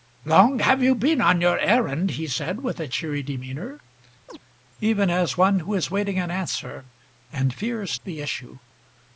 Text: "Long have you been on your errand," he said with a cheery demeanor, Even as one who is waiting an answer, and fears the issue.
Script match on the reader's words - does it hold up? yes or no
yes